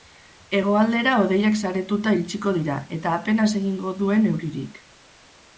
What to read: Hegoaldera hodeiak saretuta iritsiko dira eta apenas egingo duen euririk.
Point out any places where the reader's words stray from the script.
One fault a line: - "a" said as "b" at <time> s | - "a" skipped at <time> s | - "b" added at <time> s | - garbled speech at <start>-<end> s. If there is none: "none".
none